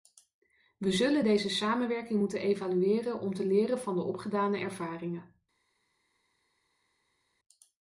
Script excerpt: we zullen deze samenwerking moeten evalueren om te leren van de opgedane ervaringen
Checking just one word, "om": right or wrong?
right